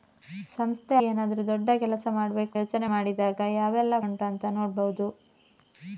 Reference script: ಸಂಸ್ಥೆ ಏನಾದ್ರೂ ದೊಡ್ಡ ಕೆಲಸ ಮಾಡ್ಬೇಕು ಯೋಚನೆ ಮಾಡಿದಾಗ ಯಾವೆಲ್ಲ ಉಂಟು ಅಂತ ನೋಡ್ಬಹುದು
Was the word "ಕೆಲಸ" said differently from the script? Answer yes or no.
no